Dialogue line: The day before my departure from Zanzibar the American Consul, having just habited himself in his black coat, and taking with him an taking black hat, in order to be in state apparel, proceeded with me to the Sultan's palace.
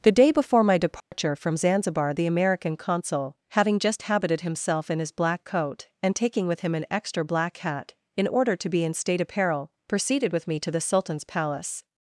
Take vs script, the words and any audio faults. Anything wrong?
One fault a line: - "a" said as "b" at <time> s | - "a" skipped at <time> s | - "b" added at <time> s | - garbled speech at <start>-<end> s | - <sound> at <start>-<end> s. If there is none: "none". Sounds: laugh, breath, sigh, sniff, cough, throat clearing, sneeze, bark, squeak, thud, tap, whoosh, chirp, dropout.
- dropout at 1.0-1.1 s
- "taking" said as "extra" at 6.9 s